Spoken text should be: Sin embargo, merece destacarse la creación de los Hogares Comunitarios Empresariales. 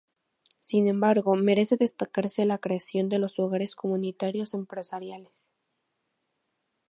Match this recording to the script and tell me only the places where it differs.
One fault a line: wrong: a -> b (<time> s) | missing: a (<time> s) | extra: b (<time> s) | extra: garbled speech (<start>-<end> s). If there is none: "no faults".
no faults